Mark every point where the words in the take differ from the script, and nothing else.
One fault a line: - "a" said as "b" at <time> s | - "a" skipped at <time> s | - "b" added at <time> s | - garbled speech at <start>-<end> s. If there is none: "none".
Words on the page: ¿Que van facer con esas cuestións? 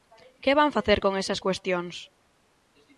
none